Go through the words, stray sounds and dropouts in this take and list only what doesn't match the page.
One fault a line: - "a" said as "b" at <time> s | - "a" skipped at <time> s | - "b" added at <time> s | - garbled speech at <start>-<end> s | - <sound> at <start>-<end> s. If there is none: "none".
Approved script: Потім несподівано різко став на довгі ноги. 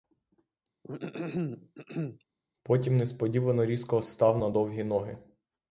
- throat clearing at 0.8-2.2 s